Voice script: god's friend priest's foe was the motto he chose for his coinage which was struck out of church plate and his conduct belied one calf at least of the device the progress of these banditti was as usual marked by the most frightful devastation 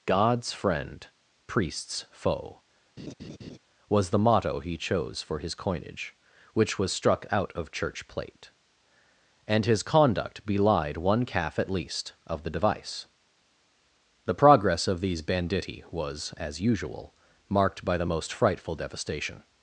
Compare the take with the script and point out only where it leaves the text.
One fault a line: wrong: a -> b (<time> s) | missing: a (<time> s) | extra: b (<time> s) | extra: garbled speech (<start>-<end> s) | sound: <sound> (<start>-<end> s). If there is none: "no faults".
sound: laugh (3.0-3.6 s)